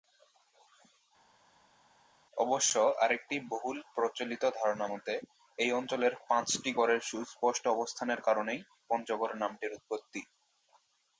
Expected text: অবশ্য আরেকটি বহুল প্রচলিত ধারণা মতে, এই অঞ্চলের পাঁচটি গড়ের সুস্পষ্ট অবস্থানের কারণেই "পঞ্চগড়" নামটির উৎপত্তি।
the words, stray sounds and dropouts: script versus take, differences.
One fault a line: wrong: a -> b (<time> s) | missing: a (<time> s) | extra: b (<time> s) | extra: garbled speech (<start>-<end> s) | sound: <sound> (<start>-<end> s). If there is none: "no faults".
no faults